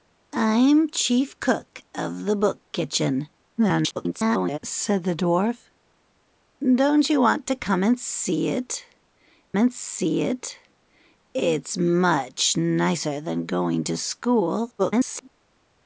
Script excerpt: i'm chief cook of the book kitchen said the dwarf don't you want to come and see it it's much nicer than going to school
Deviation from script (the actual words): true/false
true